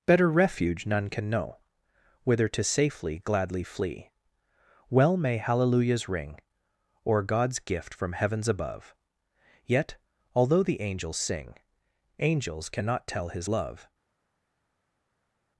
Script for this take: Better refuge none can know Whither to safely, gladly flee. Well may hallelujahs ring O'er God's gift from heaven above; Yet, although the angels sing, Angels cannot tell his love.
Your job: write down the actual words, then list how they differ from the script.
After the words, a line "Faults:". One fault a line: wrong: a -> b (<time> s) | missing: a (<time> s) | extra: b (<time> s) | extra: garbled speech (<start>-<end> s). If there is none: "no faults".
Better refuge none can know Whither to safely, gladly flee. Well may hallelujahs ring O'er God's gift from heavens above; Yet, although the angels sing, Angels cannot tell his love.
Faults:
wrong: heaven -> heavens (8.1 s)